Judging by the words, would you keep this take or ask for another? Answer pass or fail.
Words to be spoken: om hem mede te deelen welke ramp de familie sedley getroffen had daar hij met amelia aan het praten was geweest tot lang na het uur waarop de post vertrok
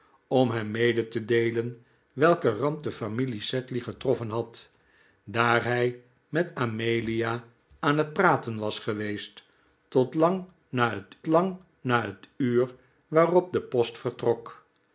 fail